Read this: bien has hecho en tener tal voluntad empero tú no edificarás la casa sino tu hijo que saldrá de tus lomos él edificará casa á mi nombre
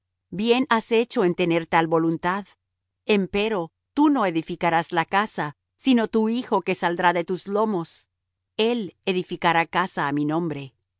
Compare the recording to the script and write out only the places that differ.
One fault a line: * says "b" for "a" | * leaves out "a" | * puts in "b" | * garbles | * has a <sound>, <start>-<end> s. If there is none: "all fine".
all fine